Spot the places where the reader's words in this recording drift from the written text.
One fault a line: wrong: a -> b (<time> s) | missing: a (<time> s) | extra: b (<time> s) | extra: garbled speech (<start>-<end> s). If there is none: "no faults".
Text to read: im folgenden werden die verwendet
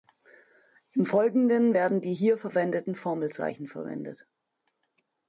extra: hier verwendeten formelzeichen (2.1 s)